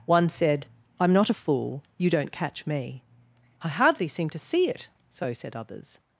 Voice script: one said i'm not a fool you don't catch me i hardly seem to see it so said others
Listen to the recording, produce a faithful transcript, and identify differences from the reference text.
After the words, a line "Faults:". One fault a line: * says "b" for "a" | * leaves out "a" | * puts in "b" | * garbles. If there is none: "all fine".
one said i'm not a fool you don't catch me i hardly seem to see it so said others
Faults:
all fine